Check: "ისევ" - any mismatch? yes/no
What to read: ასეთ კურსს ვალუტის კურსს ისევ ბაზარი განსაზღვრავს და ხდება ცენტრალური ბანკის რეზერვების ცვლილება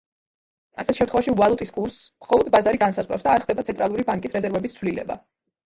yes